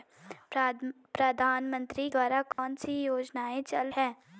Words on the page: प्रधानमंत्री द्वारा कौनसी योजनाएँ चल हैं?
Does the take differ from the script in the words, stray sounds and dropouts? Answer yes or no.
yes